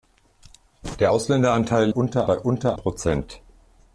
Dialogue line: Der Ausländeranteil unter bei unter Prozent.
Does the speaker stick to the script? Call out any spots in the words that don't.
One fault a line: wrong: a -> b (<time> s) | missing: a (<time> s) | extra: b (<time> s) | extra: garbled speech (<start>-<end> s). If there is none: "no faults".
no faults